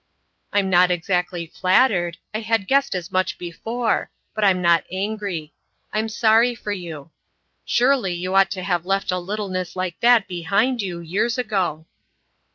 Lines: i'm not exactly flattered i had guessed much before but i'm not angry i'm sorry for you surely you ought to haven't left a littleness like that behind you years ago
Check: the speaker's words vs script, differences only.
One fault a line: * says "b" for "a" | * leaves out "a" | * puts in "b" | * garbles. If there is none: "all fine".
* puts in "as"
* says "have" for "haven't"